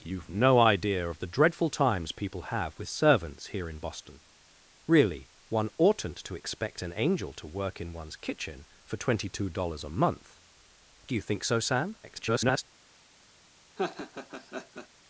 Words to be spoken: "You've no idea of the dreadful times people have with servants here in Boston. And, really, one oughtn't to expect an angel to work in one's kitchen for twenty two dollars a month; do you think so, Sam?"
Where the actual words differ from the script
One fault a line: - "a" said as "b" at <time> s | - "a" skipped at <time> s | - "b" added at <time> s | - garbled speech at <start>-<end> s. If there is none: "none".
- "And" skipped at 4.2 s
- garbled speech at 12.0-12.6 s